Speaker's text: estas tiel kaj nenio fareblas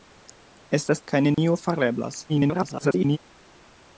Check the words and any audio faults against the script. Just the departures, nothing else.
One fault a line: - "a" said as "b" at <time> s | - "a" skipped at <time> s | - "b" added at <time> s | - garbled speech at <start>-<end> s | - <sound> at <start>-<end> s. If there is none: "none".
- "tiel" skipped at 1.0 s
- dropout at 1.3-1.4 s
- garbled speech at 2.3-3.2 s